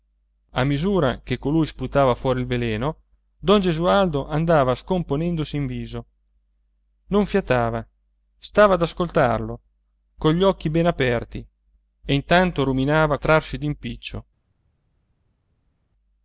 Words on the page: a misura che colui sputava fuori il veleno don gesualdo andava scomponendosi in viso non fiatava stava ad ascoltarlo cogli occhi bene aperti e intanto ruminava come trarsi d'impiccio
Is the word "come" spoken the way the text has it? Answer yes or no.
no